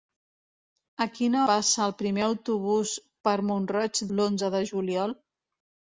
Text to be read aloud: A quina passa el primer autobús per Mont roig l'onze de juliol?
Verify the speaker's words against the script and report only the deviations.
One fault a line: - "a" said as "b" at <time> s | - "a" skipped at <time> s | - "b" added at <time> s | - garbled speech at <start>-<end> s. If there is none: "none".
none